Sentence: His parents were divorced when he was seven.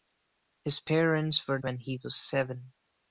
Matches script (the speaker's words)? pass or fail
fail